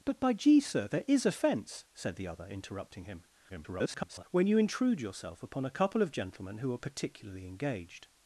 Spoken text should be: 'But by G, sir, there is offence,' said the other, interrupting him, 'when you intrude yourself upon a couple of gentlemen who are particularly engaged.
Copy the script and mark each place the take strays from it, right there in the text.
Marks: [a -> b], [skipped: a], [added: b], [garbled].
'But by G, sir, there is offence,' said the other, interrupting him, [garbled] 'when you intrude yourself upon a couple of gentlemen who are particularly engaged.